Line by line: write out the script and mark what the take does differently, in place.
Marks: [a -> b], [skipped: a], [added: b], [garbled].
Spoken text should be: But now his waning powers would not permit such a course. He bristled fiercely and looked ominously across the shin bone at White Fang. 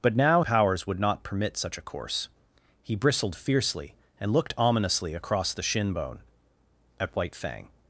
But now [skipped: his waning] powers would not permit such a course. He bristled fiercely and looked ominously across the shin bone at White Fang.